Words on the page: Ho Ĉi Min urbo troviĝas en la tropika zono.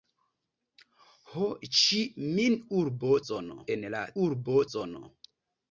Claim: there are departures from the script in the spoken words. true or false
true